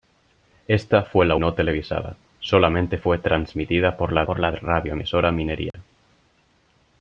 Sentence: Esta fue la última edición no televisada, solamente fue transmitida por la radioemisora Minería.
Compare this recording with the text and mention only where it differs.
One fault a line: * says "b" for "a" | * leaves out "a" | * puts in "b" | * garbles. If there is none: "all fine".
* leaves out "última edición"
* puts in "por la"